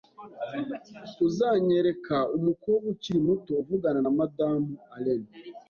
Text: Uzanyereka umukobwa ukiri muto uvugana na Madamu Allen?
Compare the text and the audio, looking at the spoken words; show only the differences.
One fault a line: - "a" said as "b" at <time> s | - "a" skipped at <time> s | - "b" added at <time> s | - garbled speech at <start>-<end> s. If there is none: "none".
none